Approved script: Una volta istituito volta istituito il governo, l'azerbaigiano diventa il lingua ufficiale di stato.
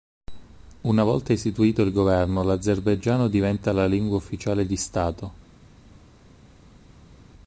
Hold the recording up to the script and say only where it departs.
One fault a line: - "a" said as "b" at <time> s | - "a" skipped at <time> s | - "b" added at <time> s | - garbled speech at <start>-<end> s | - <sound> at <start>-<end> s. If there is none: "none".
- "volta istituito" skipped at 1.8 s
- "il" said as "la" at 3.7 s